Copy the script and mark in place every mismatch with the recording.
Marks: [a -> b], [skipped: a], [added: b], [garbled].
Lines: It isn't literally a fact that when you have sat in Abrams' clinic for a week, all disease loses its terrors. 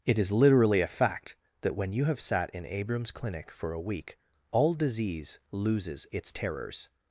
It [isn't -> is] literally a fact that when you have sat in Abrams' clinic for a week, all disease loses its terrors.